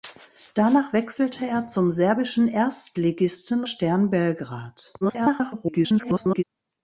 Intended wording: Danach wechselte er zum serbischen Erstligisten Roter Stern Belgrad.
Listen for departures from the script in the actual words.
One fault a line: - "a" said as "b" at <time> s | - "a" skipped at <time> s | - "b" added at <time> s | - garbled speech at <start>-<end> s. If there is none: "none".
- "Roter" skipped at 3.6 s
- garbled speech at 5.0-6.4 s